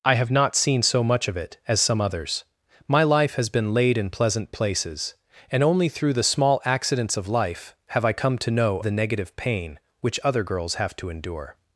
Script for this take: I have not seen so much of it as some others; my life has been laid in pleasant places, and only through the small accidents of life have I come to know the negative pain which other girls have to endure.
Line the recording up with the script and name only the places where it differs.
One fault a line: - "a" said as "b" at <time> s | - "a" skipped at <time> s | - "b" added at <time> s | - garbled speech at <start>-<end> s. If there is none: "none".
none